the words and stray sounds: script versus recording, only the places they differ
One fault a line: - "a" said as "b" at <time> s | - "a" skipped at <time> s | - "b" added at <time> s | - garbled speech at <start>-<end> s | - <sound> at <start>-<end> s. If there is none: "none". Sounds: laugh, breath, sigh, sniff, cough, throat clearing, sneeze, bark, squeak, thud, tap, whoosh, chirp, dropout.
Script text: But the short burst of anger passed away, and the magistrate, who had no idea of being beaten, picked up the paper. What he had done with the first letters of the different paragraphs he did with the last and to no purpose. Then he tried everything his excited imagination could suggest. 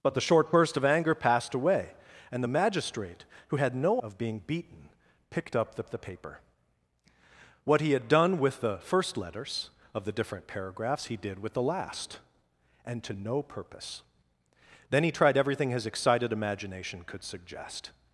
- "idea" skipped at 4.0 s
- "the" added at 5.9 s